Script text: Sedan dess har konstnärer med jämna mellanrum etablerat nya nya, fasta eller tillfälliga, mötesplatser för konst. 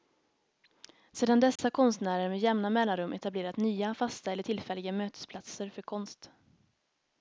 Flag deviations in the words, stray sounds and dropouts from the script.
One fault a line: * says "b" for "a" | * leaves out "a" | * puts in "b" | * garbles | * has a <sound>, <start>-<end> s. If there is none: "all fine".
* has a dropout, 1.6-1.6 s
* leaves out "nya"